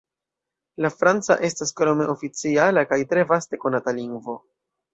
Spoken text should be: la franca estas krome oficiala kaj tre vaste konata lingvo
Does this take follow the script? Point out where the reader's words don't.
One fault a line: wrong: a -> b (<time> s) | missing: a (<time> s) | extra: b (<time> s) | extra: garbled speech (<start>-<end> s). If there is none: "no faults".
no faults